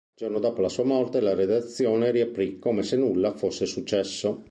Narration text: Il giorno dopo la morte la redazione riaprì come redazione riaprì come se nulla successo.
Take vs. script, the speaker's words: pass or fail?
fail